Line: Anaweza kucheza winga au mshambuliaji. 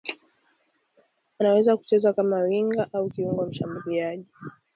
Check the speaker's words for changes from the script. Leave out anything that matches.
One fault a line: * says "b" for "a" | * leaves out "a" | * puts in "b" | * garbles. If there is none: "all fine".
* puts in "kama"
* puts in "kiungo"